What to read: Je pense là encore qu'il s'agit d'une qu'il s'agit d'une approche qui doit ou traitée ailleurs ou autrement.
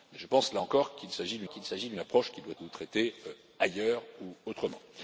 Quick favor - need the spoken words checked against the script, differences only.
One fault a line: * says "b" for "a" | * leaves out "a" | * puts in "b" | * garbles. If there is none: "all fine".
all fine